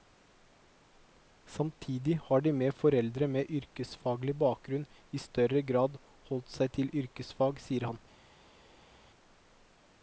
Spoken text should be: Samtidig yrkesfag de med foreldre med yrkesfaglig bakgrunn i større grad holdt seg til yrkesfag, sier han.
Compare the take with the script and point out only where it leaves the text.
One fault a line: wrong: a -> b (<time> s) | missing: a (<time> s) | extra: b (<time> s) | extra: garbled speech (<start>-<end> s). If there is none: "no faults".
wrong: yrkesfag -> har (2.3 s)